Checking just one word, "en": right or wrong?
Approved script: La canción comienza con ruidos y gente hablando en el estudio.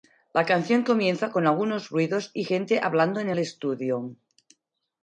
right